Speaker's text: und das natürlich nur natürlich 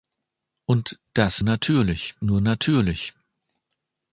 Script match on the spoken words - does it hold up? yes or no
yes